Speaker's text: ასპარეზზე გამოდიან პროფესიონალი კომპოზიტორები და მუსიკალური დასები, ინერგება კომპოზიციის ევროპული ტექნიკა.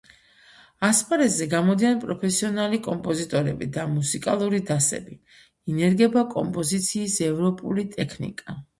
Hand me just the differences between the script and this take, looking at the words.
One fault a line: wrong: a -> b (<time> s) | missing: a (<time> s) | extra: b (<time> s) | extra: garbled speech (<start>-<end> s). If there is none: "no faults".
no faults